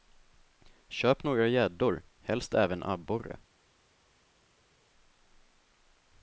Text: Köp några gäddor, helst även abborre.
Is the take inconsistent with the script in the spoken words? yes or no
no